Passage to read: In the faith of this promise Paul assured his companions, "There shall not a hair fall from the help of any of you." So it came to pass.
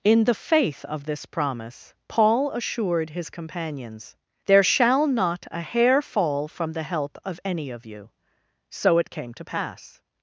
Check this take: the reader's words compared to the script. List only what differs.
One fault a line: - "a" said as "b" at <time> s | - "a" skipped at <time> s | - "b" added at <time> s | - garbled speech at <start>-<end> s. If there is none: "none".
none